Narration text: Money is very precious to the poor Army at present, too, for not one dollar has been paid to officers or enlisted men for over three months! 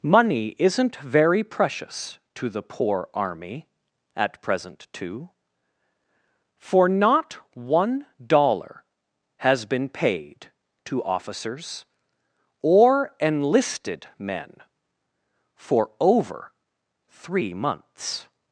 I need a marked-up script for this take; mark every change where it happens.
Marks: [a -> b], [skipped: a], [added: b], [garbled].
Money [is -> isn't] very precious to the poor Army at present, too, for not one dollar has been paid to officers or enlisted men for over three months!